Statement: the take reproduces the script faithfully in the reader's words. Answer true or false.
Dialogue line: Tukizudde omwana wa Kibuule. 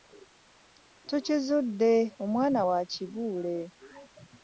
true